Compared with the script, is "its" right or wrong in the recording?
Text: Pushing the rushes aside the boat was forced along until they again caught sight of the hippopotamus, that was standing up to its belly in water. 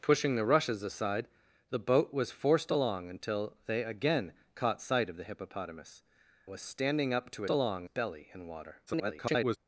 wrong